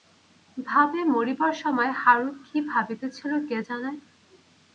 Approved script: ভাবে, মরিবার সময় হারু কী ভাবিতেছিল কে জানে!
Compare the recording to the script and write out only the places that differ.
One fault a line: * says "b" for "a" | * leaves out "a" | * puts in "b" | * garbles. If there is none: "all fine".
all fine